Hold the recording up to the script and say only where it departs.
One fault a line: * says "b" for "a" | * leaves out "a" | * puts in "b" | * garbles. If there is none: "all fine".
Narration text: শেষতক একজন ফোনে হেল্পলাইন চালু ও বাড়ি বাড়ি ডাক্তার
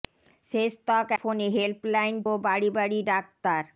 * leaves out "একজন"
* leaves out "চালু"